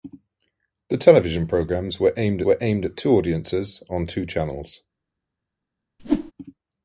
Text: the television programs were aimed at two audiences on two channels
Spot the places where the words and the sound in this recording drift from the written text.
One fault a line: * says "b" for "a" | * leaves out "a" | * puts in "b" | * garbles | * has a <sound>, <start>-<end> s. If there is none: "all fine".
* puts in "were aimed"
* has a whoosh, 6.0-6.3 s